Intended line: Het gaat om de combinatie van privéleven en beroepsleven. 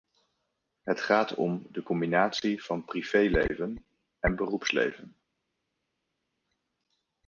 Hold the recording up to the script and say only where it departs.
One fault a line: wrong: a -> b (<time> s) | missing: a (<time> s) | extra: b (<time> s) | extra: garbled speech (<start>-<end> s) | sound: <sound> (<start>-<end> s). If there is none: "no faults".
no faults